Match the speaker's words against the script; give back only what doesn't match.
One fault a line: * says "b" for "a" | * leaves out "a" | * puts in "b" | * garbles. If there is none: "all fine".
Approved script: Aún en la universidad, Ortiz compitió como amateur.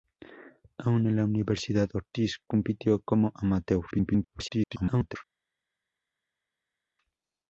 * garbles